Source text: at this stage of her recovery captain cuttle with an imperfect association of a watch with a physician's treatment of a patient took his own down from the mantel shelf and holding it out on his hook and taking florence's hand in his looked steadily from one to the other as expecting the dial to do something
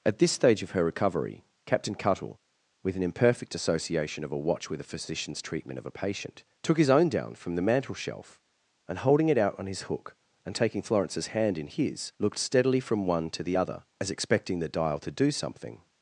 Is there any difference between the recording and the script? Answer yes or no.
no